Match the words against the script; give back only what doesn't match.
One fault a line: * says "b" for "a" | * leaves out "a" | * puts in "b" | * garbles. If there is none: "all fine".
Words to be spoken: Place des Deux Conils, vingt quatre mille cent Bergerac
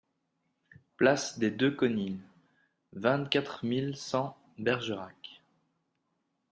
all fine